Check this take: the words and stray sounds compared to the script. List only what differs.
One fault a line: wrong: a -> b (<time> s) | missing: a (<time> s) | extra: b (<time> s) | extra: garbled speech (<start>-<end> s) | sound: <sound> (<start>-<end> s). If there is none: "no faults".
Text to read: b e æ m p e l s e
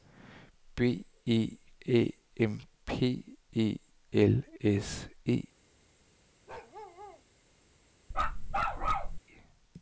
sound: bark (6.5-7.2 s)
sound: bark (8.1-9.2 s)